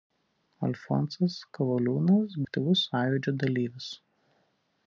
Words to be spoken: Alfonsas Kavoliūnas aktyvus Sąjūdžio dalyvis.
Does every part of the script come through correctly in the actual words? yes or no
yes